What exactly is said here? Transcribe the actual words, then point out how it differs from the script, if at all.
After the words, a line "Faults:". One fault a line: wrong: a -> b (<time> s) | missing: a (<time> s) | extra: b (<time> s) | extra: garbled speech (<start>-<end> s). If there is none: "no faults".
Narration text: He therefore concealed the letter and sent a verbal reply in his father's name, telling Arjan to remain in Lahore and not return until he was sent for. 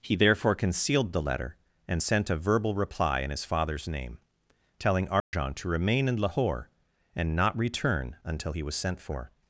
He therefore concealed the letter and sent a verbal reply in his father's name, telling Arjan to remain in Lahore and not return until he was sent for.
Faults:
no faults